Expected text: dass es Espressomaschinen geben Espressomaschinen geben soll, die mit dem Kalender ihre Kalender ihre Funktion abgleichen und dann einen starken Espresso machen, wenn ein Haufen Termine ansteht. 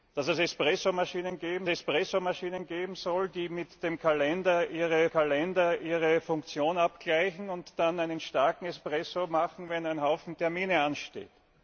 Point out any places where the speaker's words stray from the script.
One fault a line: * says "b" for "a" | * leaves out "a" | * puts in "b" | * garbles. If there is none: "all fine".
all fine